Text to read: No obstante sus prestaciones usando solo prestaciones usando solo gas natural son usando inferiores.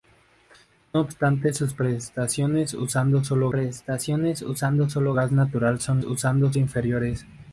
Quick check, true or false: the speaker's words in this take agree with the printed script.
true